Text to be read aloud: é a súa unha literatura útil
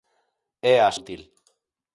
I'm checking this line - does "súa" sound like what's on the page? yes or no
no